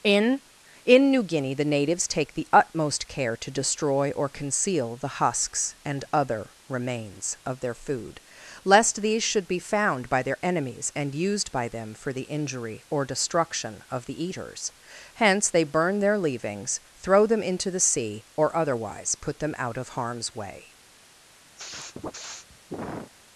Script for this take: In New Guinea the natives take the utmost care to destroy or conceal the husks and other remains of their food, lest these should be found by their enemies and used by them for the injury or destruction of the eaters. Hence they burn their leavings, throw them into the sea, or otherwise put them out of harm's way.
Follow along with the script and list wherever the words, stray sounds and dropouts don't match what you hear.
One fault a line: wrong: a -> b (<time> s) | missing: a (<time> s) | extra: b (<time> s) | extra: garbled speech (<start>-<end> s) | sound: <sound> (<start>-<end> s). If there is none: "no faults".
extra: in (0.8 s)
sound: sniff (21.6-23.1 s)